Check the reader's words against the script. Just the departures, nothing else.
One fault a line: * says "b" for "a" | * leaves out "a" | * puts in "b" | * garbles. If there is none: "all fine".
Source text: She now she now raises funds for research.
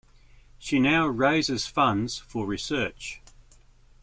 * leaves out "she now"